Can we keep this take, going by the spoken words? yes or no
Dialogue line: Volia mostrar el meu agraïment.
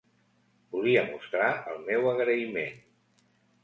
yes